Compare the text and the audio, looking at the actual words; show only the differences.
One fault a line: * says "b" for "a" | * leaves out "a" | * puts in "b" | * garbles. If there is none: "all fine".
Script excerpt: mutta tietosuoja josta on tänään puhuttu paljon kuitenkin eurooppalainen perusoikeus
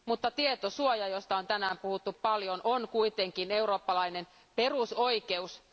* puts in "on"